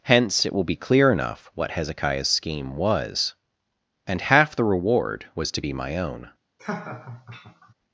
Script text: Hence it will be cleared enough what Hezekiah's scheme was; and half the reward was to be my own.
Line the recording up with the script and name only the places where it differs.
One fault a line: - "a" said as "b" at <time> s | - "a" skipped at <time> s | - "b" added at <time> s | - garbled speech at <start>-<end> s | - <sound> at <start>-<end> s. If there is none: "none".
- "cleared" said as "clear" at 0.8 s
- laugh at 6.6-7.7 s